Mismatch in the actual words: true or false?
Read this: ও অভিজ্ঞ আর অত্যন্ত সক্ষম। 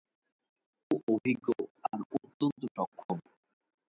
false